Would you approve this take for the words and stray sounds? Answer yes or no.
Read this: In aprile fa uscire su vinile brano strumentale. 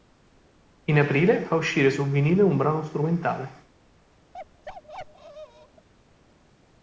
no